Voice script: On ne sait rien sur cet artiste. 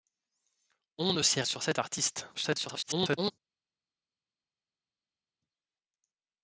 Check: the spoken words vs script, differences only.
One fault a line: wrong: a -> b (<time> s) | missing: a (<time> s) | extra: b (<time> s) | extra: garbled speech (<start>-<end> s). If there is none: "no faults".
missing: rien (1.4 s)
extra: garbled speech (2.3-3.3 s)